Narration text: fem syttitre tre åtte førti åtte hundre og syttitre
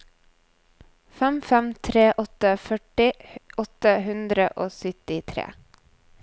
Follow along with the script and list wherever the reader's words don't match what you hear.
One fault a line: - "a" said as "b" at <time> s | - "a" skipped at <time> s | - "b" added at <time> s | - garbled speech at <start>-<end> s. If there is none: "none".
- "syttitre" said as "fem" at 1.5 s